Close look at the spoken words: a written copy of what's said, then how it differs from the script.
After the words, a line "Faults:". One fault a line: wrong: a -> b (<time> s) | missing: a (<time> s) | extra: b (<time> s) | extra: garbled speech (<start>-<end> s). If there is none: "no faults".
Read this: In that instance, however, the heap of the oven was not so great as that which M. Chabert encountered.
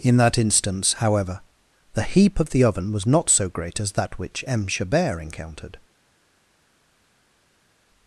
In that instance, however, the heap of the oven was not so great as that which M. Chabert encountered.
Faults:
no faults